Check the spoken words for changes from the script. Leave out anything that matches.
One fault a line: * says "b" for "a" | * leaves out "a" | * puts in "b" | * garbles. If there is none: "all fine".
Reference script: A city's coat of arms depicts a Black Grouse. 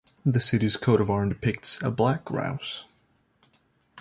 * says "The" for "A"